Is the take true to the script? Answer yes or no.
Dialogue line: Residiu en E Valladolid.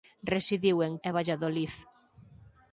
yes